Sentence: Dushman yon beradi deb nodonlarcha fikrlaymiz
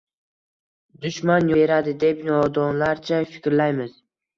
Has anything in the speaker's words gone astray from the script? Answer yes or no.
yes